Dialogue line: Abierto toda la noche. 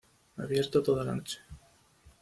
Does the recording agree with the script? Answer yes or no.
yes